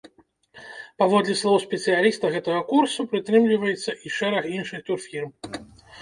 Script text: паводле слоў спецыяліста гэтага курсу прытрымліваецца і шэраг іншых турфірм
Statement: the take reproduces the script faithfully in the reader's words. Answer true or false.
true